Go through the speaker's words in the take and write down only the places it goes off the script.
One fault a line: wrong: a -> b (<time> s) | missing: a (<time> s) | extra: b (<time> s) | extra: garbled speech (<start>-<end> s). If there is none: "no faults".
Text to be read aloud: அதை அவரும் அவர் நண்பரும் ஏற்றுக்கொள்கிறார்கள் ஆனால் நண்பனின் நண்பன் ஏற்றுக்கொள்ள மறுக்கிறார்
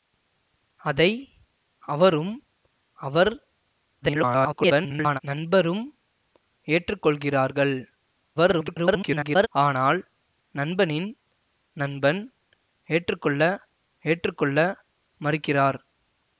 extra: garbled speech (4.0-5.2 s)
extra: garbled speech (8.4-9.5 s)
extra: ஏற்றுக்கொள்ள (14.0 s)